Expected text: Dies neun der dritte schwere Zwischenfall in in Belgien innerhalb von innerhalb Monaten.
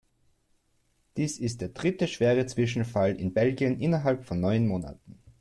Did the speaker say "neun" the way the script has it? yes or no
no